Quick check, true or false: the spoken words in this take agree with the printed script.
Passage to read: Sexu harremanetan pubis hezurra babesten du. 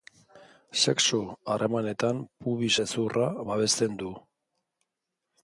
true